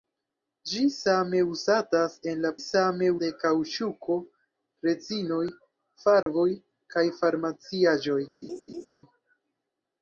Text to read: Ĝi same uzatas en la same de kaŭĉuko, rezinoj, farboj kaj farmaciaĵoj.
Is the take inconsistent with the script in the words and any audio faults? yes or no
yes